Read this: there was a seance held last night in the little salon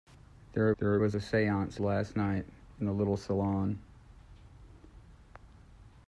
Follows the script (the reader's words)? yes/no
no